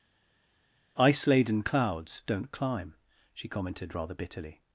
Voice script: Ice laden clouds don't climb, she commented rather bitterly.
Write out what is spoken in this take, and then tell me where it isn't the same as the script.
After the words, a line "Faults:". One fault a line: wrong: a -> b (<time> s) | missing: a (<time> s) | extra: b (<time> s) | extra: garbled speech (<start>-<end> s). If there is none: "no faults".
Ice laden clouds don't climb, she commented rather bitterly.
Faults:
no faults